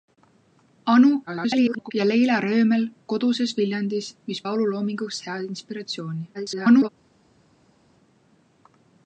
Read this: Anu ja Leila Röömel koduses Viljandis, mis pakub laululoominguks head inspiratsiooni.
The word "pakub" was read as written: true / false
false